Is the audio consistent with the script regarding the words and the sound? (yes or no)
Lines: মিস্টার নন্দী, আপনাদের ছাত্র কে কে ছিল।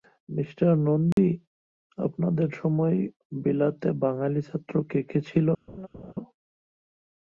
no